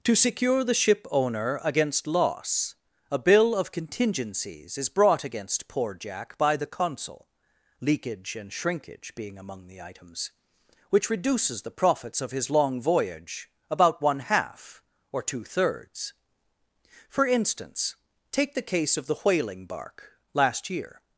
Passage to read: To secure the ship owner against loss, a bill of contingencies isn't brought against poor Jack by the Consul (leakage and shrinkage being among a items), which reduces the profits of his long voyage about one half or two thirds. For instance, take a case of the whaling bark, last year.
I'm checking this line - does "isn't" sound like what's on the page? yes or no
no